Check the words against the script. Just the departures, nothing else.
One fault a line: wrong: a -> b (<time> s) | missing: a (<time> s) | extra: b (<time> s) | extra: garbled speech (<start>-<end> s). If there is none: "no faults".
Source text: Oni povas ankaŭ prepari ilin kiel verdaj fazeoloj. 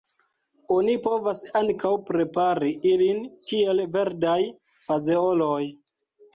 no faults